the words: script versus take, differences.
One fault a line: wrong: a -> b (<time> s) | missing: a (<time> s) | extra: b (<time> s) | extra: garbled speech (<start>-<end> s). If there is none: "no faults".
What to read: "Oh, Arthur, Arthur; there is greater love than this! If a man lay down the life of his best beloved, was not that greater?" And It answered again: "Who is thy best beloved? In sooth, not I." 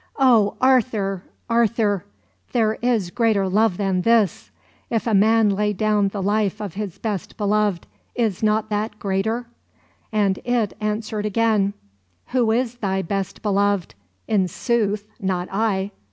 wrong: was -> is (8.1 s)